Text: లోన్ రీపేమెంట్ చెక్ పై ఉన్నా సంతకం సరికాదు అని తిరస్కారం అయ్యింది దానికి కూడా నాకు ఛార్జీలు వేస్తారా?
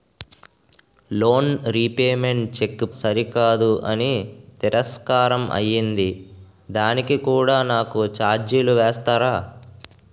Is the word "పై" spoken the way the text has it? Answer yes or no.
no